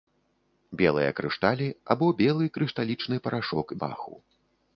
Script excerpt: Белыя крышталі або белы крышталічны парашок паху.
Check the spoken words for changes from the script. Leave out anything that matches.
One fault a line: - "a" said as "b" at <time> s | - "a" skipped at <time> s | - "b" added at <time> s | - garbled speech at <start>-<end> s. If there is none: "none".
none